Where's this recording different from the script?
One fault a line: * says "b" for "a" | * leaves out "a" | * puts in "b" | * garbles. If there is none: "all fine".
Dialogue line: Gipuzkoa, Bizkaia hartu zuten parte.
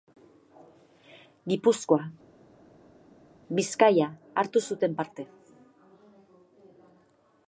all fine